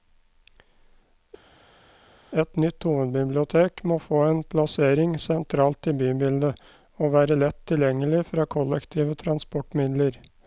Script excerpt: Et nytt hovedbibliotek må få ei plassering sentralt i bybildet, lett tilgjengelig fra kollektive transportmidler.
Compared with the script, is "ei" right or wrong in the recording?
wrong